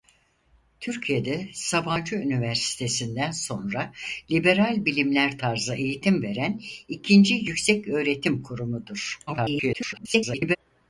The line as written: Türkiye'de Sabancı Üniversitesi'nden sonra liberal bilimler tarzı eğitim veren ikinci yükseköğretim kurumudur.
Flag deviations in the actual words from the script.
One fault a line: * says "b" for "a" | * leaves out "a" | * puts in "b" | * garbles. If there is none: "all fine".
* garbles